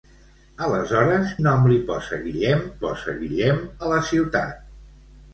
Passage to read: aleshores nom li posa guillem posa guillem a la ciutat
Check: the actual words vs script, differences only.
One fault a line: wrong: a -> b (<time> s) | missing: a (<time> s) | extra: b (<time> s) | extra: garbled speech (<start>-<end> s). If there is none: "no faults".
no faults